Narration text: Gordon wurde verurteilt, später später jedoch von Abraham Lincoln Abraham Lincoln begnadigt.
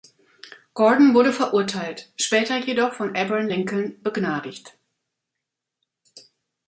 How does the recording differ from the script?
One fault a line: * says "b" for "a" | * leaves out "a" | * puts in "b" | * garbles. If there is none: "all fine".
* leaves out "später"
* leaves out "Abraham Lincoln"